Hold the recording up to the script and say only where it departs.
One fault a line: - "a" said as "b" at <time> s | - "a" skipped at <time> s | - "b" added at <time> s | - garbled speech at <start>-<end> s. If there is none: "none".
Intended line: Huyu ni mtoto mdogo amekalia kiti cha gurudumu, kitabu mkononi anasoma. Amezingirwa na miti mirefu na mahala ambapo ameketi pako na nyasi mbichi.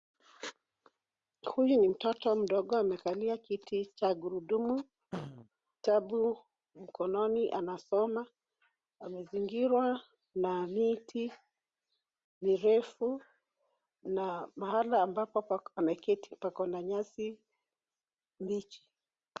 none